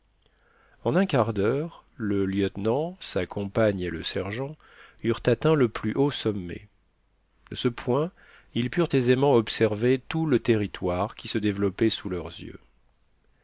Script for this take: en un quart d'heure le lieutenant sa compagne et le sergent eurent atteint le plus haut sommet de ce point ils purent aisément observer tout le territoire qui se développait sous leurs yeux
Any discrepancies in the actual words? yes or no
no